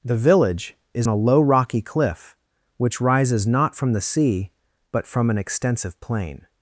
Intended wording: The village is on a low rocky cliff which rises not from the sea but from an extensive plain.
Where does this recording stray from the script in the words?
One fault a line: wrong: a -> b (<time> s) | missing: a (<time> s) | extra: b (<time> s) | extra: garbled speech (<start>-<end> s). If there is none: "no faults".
missing: on (1.1 s)